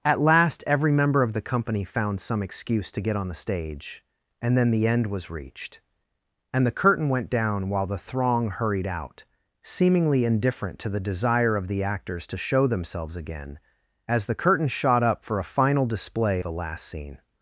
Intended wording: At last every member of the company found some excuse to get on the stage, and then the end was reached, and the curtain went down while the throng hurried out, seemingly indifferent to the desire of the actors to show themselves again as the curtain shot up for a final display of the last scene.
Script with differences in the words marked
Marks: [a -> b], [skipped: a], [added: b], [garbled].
At last every member of the company found some excuse to get on the stage, and then the end was reached, and the curtain went down while the throng hurried out, seemingly indifferent to the desire of the actors to show themselves again as the curtain shot up for a final display [skipped: of] the last scene.